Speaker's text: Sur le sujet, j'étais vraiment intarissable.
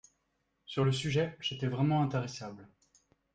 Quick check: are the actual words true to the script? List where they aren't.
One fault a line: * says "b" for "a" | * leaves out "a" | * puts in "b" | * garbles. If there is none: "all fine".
all fine